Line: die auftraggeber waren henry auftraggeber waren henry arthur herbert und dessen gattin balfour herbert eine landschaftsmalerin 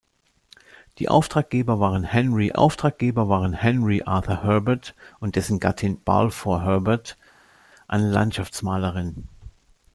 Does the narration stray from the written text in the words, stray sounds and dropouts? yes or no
no